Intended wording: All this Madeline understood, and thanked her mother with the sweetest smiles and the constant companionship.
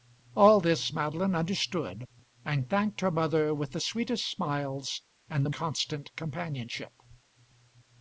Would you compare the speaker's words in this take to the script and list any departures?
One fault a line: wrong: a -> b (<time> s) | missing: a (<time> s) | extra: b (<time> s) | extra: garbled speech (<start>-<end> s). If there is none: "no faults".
no faults